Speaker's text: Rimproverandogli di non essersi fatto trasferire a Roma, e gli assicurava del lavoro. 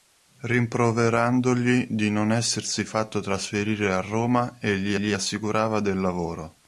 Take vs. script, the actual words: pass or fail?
fail